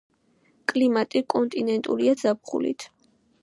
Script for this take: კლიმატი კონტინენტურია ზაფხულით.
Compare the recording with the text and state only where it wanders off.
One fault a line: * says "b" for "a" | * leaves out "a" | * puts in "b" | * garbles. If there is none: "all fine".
all fine